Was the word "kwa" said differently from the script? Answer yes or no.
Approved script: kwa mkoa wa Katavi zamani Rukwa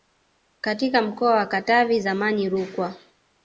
yes